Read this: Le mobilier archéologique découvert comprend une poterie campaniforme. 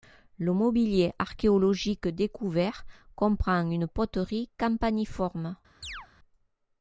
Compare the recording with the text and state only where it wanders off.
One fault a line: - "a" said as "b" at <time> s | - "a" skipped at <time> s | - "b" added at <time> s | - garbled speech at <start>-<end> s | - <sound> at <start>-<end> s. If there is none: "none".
- chirp at 5.8-6.1 s